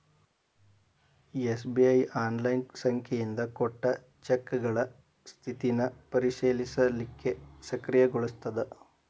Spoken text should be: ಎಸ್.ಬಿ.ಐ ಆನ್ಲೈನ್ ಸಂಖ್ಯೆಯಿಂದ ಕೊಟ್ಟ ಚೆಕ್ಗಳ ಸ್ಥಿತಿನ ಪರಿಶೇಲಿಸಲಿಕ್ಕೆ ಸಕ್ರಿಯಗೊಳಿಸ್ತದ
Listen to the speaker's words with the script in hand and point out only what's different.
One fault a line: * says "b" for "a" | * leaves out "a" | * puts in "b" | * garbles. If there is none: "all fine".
all fine